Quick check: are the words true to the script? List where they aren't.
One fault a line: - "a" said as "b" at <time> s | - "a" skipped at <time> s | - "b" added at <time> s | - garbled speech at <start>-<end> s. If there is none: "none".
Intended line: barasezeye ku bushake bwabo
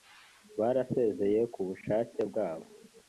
none